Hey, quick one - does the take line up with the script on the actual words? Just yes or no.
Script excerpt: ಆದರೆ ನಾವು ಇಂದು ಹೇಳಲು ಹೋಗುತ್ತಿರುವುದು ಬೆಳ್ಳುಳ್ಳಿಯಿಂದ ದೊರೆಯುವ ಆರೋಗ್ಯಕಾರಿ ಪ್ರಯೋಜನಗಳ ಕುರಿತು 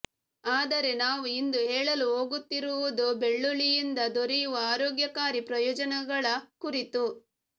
yes